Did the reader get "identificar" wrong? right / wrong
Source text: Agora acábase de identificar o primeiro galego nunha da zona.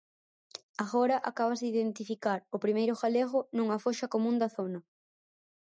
right